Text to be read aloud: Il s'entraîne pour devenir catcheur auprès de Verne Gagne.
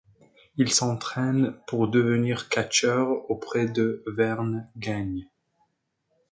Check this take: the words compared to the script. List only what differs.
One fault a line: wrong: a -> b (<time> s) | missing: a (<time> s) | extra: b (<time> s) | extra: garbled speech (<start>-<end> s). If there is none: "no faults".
no faults